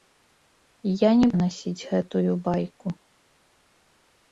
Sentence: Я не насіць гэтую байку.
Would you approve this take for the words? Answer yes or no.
yes